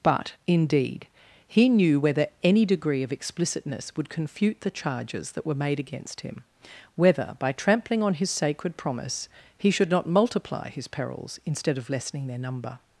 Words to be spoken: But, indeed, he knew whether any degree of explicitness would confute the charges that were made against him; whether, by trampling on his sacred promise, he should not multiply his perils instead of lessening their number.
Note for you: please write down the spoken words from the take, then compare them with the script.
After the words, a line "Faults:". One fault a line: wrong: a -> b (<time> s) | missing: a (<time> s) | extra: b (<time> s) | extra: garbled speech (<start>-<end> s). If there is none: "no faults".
But, indeed, he knew whether any degree of explicitness would confute the charges that were made against him; whether, by trampling on his sacred promise, he should not multiply his perils instead of lessening their number.
Faults:
no faults